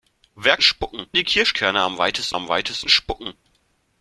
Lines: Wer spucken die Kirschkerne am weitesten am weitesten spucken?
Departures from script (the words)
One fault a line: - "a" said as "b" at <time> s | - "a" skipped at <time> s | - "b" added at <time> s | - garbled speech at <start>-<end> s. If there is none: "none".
none